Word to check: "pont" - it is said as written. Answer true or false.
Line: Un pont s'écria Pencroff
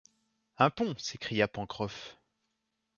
true